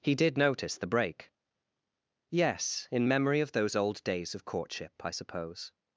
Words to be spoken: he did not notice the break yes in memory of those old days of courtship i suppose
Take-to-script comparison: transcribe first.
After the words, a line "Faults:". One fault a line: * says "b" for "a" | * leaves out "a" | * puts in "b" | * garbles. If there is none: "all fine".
he did notice the break yes in memory of those old days of courtship i suppose
Faults:
* leaves out "not"